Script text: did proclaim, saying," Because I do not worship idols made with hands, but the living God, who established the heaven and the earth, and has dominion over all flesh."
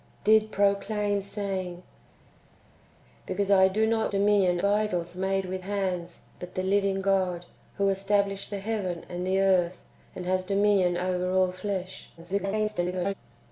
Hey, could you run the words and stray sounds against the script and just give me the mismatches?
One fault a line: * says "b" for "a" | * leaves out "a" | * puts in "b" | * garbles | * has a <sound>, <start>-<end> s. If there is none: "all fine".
* says "dominion" for "worship"
* garbles